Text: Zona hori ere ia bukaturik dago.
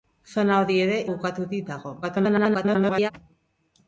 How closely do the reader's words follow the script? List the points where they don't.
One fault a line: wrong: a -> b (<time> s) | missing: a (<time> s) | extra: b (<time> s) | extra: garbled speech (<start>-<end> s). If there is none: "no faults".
missing: ia (0.9 s)
extra: garbled speech (2.0-3.1 s)